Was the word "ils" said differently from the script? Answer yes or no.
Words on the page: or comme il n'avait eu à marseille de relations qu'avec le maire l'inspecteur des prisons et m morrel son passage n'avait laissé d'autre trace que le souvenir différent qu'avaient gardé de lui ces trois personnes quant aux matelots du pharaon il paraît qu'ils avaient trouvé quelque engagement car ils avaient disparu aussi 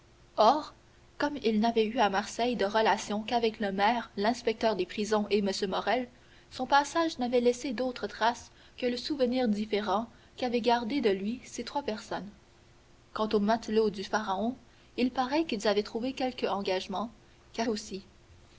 yes